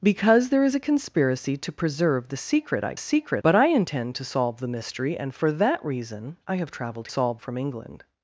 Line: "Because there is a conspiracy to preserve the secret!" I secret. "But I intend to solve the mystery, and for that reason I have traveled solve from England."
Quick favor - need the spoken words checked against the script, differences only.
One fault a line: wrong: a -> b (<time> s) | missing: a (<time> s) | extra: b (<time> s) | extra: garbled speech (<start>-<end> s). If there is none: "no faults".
no faults